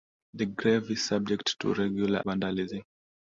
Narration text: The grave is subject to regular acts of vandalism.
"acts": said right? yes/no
no